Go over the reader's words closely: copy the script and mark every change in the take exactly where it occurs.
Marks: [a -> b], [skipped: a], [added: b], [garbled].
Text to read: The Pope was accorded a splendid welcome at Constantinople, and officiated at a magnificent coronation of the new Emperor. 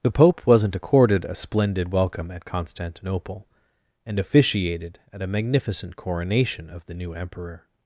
The Pope [was -> wasn't] accorded a splendid welcome at Constantinople, and officiated at a magnificent coronation of the new Emperor.